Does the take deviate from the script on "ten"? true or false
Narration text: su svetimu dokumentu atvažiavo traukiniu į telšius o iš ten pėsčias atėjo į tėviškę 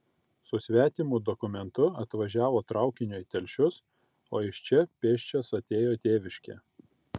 true